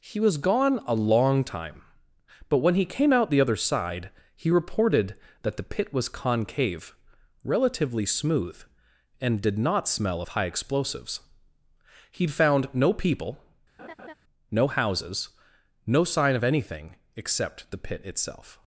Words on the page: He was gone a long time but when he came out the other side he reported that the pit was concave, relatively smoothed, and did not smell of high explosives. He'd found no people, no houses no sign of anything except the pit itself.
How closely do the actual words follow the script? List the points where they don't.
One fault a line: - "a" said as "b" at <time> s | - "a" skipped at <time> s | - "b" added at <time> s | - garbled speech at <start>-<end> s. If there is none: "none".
- "smoothed" said as "smooth" at 8.1 s